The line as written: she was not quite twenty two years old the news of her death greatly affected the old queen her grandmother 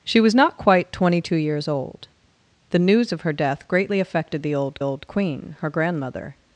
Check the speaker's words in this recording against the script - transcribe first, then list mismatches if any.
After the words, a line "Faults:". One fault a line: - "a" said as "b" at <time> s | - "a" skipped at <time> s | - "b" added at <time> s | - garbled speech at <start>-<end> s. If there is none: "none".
she was not quite twenty two years old the news of her death greatly affected the old old queen her grandmother
Faults:
- "old" added at 4.8 s